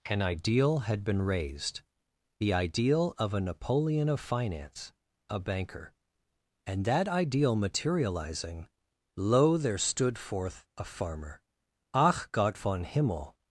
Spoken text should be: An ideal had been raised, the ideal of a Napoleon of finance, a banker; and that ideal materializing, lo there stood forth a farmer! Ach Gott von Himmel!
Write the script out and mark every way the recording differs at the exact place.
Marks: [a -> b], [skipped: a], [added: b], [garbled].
An ideal had been raised, the ideal of a Napoleon of finance, a banker; and that ideal materializing, lo there stood forth a farmer! Ach Gott von Himmel!